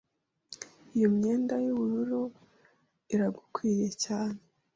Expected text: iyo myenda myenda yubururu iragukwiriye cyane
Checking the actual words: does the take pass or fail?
fail